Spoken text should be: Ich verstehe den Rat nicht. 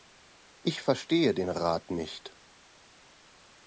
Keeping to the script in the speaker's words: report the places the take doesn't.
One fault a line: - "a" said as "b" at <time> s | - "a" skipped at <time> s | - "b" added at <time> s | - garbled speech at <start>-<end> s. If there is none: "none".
none